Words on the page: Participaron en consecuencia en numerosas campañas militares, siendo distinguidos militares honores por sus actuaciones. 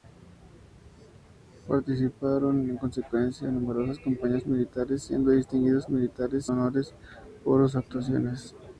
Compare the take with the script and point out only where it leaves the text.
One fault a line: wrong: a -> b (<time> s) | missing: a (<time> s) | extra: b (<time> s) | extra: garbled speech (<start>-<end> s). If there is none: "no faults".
no faults